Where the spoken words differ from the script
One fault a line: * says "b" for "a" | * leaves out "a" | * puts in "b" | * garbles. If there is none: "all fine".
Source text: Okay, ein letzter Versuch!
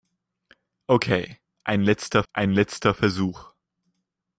* puts in "ein letzter"